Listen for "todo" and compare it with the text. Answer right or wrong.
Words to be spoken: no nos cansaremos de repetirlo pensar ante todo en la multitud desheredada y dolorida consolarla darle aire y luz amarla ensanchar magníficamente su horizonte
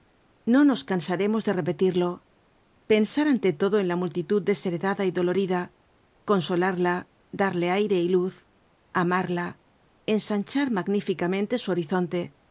right